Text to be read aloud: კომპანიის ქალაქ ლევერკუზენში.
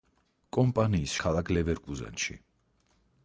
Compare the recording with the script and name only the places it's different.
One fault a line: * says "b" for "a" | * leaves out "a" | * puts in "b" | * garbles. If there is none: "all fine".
all fine